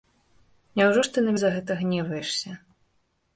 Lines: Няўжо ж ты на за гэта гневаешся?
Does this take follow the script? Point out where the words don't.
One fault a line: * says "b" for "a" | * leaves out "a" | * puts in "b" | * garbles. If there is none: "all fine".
all fine